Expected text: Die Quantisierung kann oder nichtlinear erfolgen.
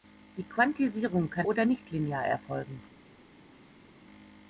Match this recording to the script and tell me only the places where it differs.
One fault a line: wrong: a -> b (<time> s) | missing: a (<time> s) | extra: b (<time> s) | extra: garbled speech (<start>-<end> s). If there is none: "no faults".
no faults